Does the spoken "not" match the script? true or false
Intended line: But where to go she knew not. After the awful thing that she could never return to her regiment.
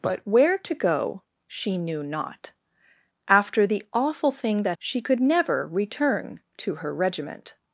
true